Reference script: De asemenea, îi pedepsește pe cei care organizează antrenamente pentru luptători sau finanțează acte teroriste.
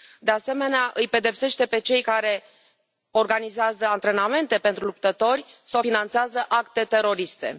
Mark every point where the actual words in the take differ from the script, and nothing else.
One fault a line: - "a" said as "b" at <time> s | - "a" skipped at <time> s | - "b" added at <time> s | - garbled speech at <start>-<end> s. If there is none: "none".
none